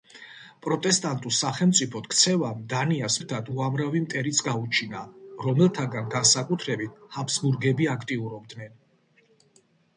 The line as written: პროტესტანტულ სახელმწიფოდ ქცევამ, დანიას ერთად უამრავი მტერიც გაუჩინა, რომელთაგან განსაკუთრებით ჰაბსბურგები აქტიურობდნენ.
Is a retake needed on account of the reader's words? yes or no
no